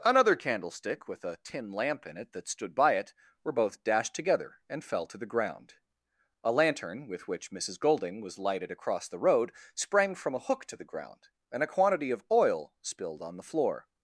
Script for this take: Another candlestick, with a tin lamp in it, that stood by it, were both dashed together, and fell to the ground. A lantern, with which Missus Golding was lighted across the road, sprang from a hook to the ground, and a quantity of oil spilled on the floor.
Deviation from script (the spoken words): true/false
false